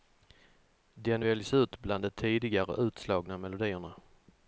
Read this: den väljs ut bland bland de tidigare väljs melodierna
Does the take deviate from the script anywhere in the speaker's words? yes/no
yes